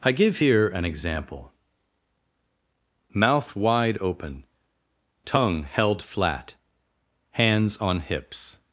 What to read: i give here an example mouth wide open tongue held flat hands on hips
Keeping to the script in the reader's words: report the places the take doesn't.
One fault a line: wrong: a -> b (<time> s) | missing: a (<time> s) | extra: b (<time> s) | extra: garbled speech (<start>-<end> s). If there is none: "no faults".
no faults